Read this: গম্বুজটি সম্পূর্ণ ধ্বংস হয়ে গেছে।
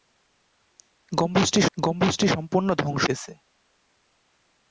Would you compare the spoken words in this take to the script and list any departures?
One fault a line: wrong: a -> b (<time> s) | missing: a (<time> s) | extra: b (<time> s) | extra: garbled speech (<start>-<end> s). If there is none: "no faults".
extra: গম্বুজটি (1.8 s)
missing: হয়ে (3.0 s)